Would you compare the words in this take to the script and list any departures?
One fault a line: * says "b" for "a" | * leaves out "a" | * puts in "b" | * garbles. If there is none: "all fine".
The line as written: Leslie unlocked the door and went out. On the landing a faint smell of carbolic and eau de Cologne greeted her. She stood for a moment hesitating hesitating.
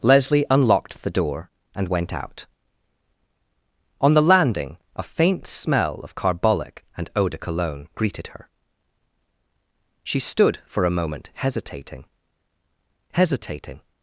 all fine